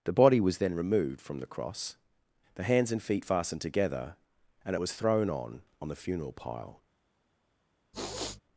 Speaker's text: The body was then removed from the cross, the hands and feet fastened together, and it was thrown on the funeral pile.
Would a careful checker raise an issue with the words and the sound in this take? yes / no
yes